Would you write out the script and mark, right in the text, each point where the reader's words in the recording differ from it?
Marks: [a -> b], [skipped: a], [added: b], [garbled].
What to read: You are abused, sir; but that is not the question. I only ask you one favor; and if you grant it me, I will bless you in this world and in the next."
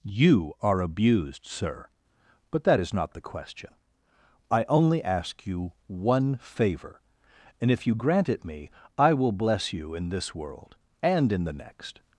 You are abused, sir; but that is not the question. I only ask you one favor; and if you grant it me, I will bless you in this world and in the next."